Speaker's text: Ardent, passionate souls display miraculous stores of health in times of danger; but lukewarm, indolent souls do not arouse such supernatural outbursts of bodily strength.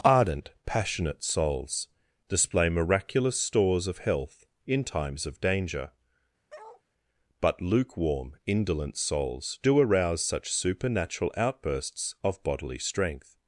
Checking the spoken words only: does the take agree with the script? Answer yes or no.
no